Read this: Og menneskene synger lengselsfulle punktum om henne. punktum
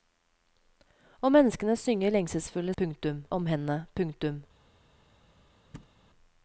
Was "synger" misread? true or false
false